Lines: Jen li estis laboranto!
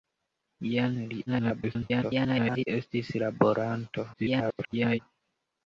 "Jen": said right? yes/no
yes